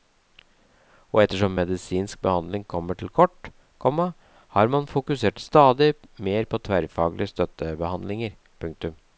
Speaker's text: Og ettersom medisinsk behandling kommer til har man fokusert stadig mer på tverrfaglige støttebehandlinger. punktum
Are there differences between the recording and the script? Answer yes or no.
yes